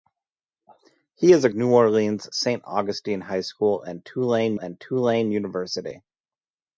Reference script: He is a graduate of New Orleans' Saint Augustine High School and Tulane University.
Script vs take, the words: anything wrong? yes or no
yes